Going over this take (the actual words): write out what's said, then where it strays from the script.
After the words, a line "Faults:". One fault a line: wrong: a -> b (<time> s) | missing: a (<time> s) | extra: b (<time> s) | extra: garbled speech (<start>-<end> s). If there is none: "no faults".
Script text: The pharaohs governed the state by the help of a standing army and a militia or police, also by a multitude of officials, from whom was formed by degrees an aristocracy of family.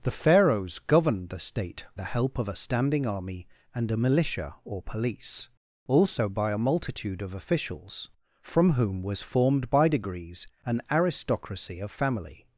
The pharaohs governed the state the help of a standing army and a militia or police, also by a multitude of officials, from whom was formed by degrees an aristocracy of family.
Faults:
missing: by (1.9 s)